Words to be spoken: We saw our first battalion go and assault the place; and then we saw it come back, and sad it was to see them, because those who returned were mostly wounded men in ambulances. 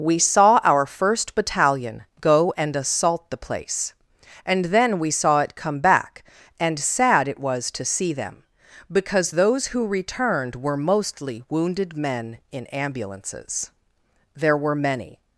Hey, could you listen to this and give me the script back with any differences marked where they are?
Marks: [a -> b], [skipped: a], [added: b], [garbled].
We saw our first battalion go and assault the place; and then we saw it come back, and sad it was to see them, because those who returned were mostly wounded men in ambulances. [added: There were many]